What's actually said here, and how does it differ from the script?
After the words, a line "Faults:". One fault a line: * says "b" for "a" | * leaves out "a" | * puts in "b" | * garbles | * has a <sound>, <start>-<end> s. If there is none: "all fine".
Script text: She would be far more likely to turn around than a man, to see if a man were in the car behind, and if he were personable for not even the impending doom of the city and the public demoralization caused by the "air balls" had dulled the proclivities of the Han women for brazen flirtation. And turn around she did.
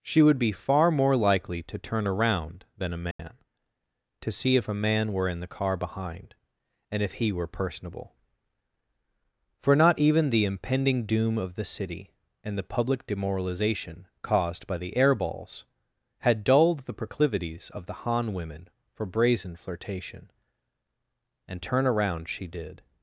She would be far more likely to turn around than a man, to see if a man were in the car behind, and if he were personable for not even the impending doom of the city and the public demoralization caused by the "air balls" had dulled the proclivities of the Han women for brazen flirtation. And turn around she did.
Faults:
* has a dropout, 3.1-3.2 s